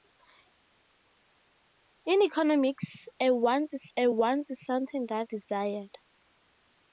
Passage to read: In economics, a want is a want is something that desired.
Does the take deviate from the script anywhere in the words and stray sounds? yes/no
no